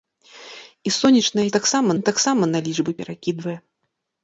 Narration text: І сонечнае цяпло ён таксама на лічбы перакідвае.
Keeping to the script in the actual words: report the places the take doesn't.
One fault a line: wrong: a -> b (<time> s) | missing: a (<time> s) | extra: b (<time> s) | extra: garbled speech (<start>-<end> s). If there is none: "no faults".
wrong: цяпло -> таксама (1.6 s)